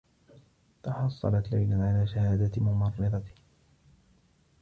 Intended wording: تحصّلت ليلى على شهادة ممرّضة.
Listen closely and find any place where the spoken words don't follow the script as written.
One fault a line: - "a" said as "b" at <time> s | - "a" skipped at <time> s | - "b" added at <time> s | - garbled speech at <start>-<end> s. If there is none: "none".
none